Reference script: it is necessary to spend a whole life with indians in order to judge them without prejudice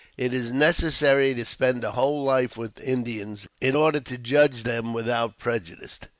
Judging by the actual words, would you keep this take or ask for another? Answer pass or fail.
pass